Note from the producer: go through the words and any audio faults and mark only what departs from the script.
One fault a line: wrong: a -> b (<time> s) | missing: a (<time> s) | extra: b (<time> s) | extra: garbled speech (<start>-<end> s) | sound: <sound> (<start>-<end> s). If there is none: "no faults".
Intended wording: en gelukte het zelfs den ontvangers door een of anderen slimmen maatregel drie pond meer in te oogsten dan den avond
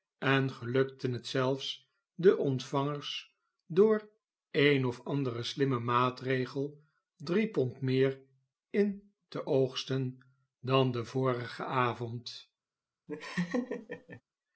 extra: vorigen (11.1 s)
sound: laugh (13.1-14.2 s)